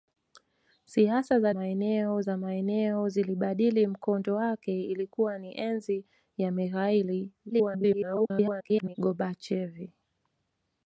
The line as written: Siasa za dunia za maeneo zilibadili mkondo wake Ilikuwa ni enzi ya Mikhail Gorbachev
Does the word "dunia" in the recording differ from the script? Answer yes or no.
yes